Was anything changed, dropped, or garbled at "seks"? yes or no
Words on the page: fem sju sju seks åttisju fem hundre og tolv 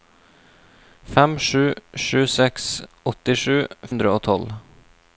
no